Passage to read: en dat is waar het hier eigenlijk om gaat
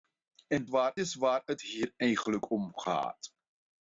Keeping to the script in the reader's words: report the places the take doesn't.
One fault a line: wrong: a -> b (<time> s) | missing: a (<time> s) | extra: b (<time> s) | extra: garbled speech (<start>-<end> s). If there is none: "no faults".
wrong: dat -> waar (0.6 s)